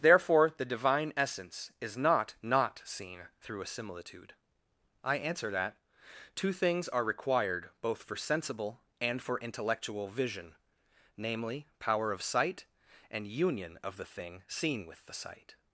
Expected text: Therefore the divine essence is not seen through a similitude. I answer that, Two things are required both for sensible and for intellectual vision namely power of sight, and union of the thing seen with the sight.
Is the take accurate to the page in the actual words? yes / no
no